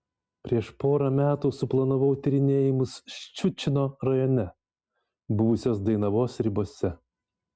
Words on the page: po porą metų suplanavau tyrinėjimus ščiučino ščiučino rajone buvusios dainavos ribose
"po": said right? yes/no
no